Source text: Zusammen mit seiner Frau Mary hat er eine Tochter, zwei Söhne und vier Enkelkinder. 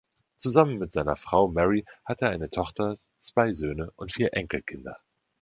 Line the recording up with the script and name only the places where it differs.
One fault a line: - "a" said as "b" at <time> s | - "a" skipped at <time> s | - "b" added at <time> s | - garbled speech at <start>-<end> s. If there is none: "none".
none